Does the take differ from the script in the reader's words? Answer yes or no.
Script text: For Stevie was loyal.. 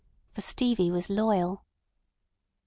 no